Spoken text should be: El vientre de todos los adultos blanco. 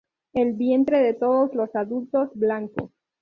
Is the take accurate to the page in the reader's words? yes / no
yes